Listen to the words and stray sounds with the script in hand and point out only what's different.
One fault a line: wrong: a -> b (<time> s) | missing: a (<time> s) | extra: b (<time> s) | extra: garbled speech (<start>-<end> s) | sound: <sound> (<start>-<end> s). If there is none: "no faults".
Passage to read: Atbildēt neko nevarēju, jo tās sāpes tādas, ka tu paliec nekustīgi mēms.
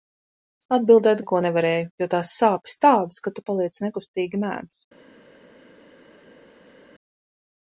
no faults